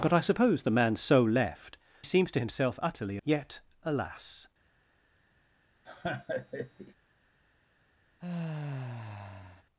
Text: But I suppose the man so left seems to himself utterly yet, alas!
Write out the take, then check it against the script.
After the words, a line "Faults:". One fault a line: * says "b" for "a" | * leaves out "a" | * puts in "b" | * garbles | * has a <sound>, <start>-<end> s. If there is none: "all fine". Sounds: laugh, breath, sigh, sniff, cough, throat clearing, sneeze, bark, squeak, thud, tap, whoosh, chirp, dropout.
But I suppose the man so left seems to himself utterly yet, alas!
Faults:
* has a laugh, 5.8-6.9 s
* has a sigh, 8.2-9.6 s